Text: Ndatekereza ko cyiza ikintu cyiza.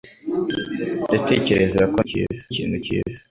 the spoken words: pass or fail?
pass